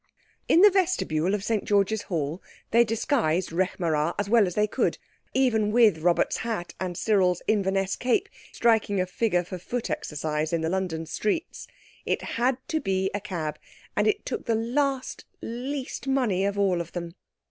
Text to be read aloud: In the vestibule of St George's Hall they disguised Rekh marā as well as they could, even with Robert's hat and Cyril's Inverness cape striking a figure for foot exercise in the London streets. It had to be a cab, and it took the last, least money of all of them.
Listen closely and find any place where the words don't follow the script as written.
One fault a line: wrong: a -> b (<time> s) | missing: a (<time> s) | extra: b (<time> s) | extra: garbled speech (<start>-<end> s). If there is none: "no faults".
no faults